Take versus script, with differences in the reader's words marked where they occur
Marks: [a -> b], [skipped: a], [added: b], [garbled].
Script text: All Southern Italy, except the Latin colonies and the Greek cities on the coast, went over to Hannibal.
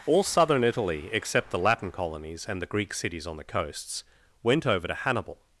All Southern Italy, except the Latin colonies and the Greek cities on the [coast, -> coasts] went over to Hannibal.